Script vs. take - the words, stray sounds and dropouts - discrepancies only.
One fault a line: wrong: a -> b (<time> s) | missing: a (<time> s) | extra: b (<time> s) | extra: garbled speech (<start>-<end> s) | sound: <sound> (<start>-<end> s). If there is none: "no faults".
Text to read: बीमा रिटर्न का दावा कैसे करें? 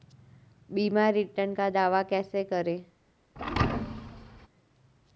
sound: thud (3.4-4.5 s)